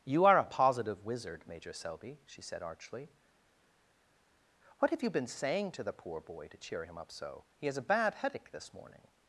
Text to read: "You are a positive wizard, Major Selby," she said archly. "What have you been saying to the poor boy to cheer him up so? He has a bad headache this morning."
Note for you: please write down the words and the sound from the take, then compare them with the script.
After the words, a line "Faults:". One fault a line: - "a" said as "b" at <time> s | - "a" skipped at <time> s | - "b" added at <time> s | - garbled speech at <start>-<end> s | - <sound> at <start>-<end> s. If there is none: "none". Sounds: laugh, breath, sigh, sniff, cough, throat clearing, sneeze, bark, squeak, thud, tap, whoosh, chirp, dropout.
"You are a positive wizard, Major Selby," she said archly. "What have you been saying to the poor boy to cheer him up so? He has a bad headache this morning."
Faults:
none